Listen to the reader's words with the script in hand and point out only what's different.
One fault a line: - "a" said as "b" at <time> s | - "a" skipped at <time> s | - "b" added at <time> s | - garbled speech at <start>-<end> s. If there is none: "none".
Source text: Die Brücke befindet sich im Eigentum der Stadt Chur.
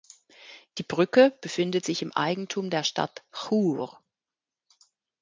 none